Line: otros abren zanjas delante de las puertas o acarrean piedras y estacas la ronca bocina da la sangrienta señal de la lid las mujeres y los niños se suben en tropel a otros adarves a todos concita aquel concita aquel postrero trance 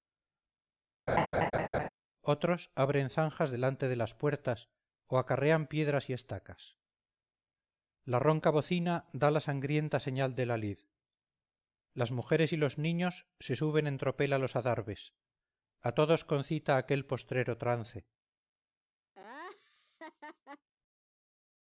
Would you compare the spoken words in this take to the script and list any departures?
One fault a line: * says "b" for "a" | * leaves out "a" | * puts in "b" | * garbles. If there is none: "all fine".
* says "los" for "otros"
* leaves out "concita aquel"